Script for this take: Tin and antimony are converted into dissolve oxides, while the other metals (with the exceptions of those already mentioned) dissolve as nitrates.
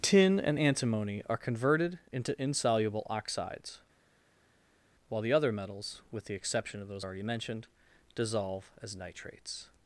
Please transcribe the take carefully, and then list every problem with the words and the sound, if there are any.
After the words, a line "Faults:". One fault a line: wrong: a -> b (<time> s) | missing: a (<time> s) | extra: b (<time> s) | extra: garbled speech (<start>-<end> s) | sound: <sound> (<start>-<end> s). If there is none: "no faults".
Tin and antimony are converted into insoluble oxides, while the other metals (with the exception of those already mentioned) dissolve as nitrates.
Faults:
wrong: dissolve -> insoluble (2.4 s)
wrong: exceptions -> exception (6.3 s)